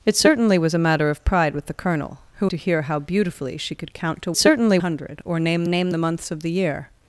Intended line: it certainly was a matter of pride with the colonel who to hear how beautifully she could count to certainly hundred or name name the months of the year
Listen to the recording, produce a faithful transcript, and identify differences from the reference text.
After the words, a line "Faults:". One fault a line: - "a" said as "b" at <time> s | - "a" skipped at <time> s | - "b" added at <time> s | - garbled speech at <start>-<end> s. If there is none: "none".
it certainly was a matter of pride with the colonel who to hear how beautifully she could count to certainly hundred or name name the months of the year
Faults:
none